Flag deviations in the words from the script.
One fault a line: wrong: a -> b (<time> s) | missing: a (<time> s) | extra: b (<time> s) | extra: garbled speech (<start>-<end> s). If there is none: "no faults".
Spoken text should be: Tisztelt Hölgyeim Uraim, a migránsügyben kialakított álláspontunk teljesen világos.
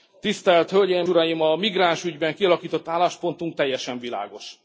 no faults